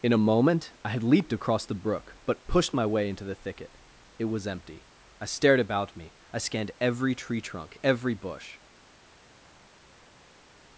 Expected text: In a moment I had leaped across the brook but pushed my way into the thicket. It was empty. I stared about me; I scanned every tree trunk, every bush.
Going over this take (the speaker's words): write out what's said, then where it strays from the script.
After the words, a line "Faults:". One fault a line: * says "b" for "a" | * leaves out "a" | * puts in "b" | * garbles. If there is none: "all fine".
In a moment I had leaped across the brook but pushed my way into the thicket. It was empty. I stared about me; I scanned every tree trunk, every bush.
Faults:
all fine